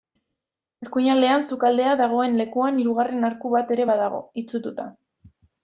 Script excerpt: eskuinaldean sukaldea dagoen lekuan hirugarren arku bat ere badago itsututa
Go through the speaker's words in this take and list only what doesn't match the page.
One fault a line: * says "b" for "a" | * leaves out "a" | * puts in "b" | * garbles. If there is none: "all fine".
all fine